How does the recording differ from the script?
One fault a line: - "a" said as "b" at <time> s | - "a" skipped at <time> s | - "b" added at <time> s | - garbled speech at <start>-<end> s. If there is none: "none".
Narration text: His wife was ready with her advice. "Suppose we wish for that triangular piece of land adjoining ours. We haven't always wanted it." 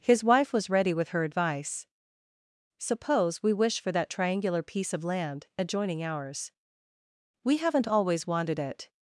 none